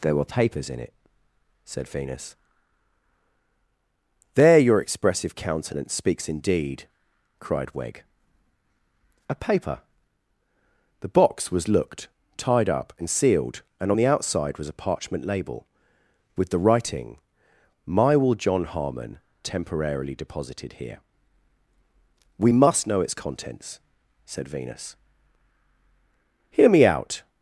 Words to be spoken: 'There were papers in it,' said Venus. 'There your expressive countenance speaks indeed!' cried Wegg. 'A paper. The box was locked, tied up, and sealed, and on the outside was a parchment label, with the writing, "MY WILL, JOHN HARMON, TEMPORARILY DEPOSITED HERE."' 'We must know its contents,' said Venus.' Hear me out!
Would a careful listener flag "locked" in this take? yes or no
yes